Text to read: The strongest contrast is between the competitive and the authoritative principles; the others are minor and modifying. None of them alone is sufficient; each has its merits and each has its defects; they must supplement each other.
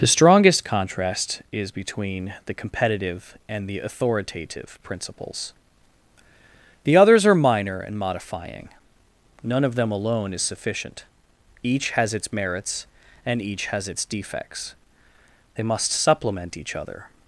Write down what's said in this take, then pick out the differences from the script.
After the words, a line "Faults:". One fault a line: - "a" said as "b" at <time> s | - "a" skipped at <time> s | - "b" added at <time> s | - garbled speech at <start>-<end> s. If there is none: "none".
The strongest contrast is between the competitive and the authoritative principles; the others are minor and modifying. None of them alone is sufficient; each has its merits and each has its defects; they must supplement each other.
Faults:
none